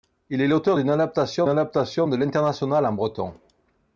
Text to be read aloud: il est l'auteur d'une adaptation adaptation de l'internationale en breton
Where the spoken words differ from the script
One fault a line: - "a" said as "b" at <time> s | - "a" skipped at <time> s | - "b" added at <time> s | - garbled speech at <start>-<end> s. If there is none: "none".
none